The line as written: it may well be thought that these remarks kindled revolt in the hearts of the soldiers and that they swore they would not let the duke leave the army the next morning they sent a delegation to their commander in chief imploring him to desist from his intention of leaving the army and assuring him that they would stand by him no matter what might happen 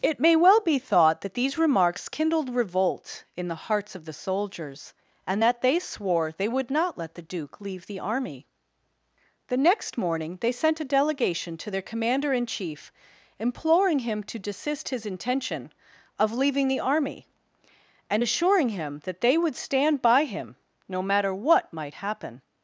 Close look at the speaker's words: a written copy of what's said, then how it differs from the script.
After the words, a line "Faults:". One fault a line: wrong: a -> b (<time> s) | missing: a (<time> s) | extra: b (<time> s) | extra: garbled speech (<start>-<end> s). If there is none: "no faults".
it may well be thought that these remarks kindled revolt in the hearts of the soldiers and that they swore they would not let the duke leave the army the next morning they sent a delegation to their commander in chief imploring him to desist his intention of leaving the army and assuring him that they would stand by him no matter what might happen
Faults:
missing: from (14.9 s)